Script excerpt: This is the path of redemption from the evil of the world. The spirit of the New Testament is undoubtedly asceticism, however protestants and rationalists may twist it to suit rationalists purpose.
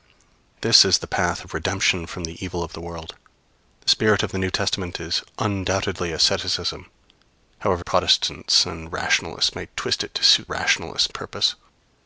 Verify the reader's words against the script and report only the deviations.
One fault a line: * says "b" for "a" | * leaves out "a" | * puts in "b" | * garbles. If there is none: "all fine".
all fine